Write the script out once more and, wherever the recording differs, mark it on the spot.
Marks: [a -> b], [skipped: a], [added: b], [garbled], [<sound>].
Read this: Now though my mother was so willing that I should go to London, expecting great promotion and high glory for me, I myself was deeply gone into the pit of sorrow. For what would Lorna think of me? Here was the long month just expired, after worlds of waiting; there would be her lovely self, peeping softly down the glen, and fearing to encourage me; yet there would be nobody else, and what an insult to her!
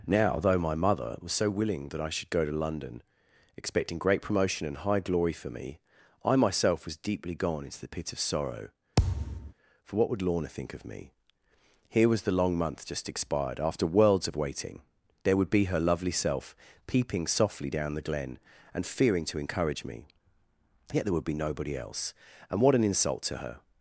Now though my mother was so willing that I should go to London, expecting great promotion and high glory for me, I myself was deeply gone into the pit of sorrow. [thud] For what would Lorna think of me? Here was the long month just expired, after worlds of waiting; there would be her lovely self, peeping softly down the glen, and fearing to encourage me; yet there would be nobody else, and what an insult to her!